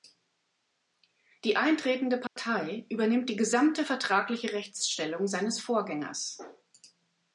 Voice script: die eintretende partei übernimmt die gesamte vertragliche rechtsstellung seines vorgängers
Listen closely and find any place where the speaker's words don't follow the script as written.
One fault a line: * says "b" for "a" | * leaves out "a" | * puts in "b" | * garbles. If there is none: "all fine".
all fine